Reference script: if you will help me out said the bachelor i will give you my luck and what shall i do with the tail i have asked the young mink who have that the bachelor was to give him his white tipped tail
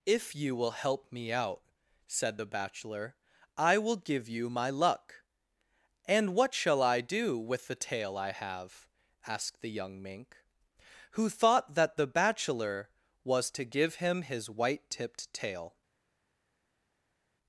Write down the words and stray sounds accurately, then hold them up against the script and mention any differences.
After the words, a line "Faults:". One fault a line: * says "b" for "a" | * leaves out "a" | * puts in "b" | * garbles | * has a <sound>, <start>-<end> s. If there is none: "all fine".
if you will help me out said the bachelor i will give you my luck and what shall i do with the tail i have asked the young mink who thought that the bachelor was to give him his white tipped tail
Faults:
* says "thought" for "have"